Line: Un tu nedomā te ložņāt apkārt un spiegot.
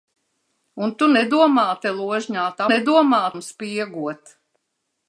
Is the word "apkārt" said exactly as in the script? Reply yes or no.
no